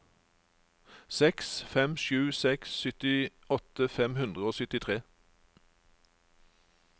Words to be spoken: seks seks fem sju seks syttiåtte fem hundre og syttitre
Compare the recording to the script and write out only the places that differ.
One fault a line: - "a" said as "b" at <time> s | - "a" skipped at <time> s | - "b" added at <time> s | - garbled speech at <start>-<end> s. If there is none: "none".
- "seks" skipped at 1.5 s